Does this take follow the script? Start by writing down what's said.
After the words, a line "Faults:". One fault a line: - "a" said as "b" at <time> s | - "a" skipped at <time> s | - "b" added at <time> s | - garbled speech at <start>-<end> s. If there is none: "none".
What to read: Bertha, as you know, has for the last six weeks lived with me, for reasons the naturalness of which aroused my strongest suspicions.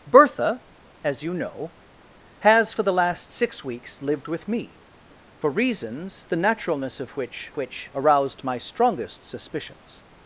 Bertha, as you know, has for the last six weeks lived with me, for reasons the naturalness of which which aroused my strongest suspicions.
Faults:
- "which" added at 7.5 s